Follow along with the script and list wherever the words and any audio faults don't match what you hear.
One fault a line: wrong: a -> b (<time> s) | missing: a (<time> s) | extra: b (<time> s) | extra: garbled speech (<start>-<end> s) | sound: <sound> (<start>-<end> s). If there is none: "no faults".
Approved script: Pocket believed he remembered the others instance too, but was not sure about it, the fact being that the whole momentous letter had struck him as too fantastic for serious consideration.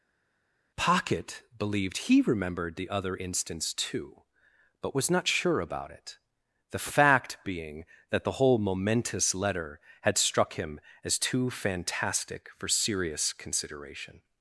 wrong: others -> other (2.9 s)